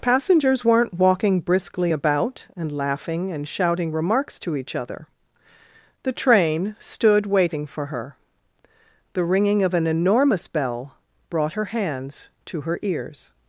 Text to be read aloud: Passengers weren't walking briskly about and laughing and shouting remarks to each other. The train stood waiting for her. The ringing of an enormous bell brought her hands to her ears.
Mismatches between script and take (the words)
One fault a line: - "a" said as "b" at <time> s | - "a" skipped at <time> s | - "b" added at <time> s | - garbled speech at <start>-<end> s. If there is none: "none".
none